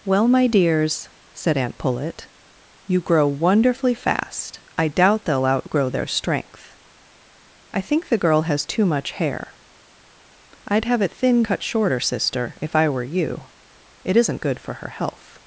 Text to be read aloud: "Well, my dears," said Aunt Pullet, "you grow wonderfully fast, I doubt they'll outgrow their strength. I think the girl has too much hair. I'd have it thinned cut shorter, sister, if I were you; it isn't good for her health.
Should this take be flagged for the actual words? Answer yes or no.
no